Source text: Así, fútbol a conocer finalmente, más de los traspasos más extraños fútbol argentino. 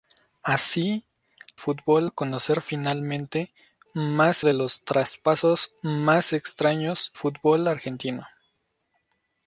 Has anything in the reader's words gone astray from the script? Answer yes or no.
no